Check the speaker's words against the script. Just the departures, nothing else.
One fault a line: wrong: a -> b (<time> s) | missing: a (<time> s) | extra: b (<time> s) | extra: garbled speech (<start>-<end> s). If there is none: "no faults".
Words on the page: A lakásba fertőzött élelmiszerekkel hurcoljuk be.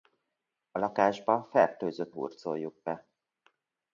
missing: élelmiszerekkel (2.2 s)